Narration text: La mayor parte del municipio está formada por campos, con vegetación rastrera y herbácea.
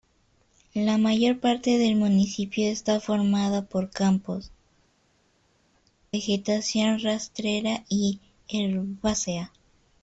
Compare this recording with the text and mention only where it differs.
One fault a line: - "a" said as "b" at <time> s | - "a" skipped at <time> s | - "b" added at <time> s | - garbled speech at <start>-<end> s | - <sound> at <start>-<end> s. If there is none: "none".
- "con" skipped at 4.5 s